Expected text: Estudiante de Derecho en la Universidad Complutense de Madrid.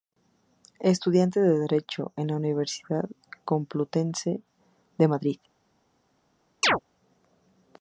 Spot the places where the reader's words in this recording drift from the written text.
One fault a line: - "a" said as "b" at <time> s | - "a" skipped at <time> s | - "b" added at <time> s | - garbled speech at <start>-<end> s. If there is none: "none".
none